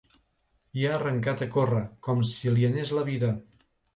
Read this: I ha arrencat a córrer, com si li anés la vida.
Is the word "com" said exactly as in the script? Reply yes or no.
yes